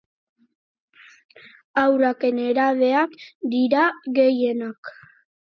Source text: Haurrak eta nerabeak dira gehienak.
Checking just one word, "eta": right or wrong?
wrong